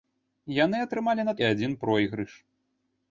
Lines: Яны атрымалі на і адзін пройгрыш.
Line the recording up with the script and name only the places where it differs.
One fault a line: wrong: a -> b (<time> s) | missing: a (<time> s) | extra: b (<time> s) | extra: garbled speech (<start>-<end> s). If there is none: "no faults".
no faults